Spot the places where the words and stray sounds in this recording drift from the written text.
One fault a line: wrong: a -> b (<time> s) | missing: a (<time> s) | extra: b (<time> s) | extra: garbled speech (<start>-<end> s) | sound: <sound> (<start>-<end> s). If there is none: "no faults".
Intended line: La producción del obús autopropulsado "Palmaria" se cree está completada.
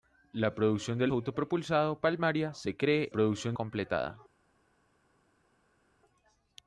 missing: obús (1.1 s)
wrong: está -> producción (3.1 s)